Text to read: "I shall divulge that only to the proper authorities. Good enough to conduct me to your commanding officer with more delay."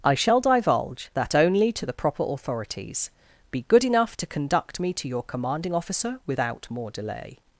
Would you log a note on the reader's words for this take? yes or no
yes